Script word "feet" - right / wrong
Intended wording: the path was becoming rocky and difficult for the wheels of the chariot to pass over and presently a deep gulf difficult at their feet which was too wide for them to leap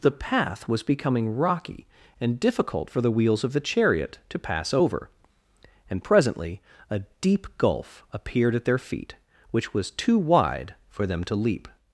right